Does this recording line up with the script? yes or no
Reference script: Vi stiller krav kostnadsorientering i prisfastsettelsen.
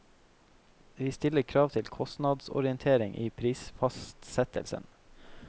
no